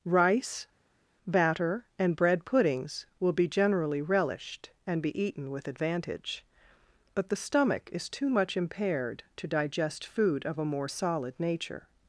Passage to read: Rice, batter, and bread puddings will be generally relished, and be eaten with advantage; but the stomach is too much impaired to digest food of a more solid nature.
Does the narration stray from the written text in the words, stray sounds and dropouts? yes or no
no